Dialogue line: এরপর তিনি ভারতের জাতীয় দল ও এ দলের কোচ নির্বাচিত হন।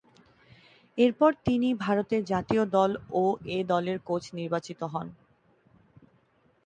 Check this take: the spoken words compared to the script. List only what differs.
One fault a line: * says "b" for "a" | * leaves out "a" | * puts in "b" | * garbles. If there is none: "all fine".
all fine